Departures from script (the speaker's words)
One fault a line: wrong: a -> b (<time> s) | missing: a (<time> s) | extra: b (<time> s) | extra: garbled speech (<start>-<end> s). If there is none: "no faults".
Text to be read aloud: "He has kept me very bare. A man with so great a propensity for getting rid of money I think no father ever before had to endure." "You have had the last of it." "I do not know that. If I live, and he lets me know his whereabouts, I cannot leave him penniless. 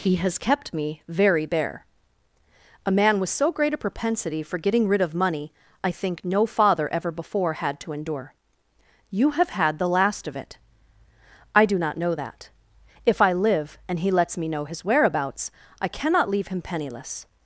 no faults